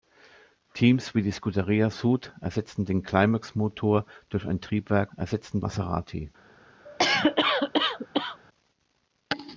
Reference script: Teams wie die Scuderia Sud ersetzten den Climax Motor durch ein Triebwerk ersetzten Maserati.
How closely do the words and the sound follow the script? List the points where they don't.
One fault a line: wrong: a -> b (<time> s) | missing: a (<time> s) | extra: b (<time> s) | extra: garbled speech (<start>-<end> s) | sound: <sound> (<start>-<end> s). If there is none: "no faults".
sound: cough (6.8-8.4 s)